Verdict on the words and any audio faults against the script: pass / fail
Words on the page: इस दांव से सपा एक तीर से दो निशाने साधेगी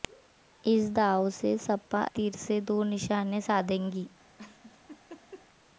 fail